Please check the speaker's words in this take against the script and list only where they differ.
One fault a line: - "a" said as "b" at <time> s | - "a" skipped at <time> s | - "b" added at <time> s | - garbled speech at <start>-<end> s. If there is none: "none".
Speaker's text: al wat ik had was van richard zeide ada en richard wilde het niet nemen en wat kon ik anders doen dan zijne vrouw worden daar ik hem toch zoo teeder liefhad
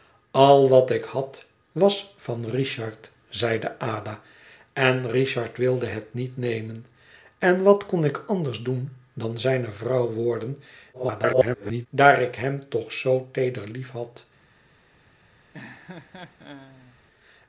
- garbled speech at 10.9-11.9 s